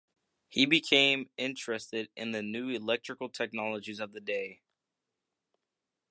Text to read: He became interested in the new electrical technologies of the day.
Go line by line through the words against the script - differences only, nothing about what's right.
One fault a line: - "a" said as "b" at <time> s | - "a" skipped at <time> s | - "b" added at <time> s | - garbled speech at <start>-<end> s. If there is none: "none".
none